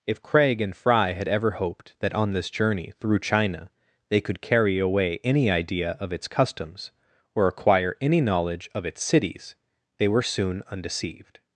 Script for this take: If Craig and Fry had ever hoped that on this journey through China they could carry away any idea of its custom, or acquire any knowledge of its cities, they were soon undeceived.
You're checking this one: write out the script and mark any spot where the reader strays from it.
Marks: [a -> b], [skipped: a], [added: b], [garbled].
If Craig and Fry had ever hoped that on this journey through China they could carry away any idea of its [custom, -> customs] or acquire any knowledge of its cities, they were soon undeceived.